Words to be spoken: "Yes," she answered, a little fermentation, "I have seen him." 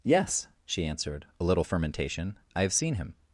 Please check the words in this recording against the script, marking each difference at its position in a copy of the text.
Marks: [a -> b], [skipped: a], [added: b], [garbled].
"Yes," she answered, a little fermentation, "I have seen him."